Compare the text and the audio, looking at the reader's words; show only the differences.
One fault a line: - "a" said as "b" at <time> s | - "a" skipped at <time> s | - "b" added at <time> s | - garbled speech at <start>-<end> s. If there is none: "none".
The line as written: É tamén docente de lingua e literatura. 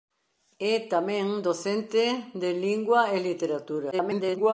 - garbled speech at 3.9-4.5 s